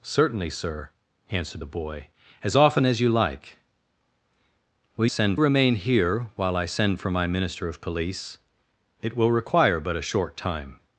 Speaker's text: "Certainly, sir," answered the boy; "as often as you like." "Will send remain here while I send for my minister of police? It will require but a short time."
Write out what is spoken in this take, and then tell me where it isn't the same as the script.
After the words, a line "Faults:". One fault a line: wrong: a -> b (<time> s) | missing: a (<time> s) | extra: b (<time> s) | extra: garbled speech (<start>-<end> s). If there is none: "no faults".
"Certainly, sir," answered the boy; "as often as you like." "Will send remain here while I send for my minister of police? It will require but a short time."
Faults:
no faults